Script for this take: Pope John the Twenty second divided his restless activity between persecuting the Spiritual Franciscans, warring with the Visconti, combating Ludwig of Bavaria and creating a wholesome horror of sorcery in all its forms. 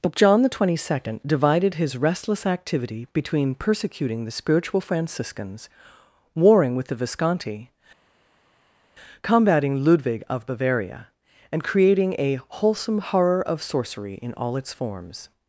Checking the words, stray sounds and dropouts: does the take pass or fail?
pass